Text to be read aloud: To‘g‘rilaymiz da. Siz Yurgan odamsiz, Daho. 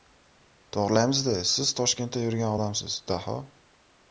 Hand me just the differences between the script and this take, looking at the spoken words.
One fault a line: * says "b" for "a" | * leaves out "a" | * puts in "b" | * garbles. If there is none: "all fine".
* puts in "Toshkentda"